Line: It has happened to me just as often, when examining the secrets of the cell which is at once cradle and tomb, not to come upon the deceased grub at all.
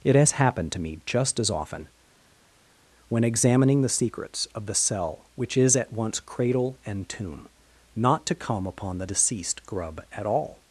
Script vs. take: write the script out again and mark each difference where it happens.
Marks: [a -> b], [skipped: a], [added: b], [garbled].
It has happened to me just as often, when examining the secrets of the cell which is at once cradle and tomb, not to come upon the deceased grub at all.